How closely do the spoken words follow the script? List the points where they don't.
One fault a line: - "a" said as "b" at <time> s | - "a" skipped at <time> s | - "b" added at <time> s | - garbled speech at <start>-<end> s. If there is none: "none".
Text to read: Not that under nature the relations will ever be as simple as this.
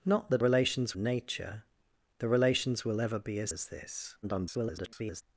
- "under" said as "relations" at 0.4 s
- "simple" skipped at 3.5 s
- garbled speech at 4.2-5.2 s